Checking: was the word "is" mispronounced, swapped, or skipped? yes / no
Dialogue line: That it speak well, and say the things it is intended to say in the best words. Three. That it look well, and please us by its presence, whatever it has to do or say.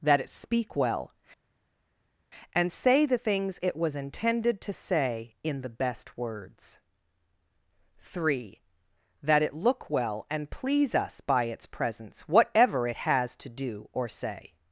yes